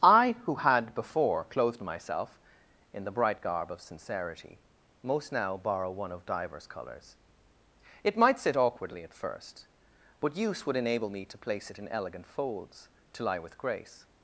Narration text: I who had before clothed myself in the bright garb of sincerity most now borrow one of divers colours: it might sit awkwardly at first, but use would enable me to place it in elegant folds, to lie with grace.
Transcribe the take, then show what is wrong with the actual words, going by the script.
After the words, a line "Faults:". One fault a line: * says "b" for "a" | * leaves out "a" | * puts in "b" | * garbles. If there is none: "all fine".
I who had before clothed myself in the bright garb of sincerity most now borrow one of divers colours: it might sit awkwardly at first, but use would enable me to place it in elegant folds, to lie with grace.
Faults:
all fine